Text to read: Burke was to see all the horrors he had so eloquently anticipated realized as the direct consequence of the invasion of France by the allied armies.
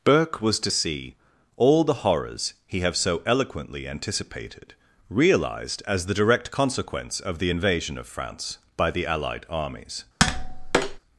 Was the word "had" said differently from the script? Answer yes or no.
yes